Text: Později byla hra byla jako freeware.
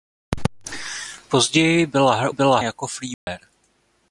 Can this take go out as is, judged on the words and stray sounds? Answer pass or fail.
fail